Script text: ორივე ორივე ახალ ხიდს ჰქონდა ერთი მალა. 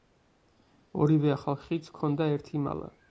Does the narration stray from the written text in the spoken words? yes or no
yes